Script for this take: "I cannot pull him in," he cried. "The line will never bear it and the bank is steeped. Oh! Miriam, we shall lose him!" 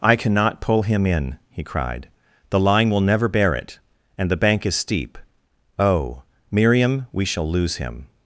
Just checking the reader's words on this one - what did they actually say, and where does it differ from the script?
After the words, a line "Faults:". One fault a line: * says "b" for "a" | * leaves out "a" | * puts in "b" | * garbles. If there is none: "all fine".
"I cannot pull him in," he cried. "The line will never bear it and the bank is steep. Oh! Miriam, we shall lose him!"
Faults:
* says "steep" for "steeped"